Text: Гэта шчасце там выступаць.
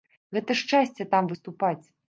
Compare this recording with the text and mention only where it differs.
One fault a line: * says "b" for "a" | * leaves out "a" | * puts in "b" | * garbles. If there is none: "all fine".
all fine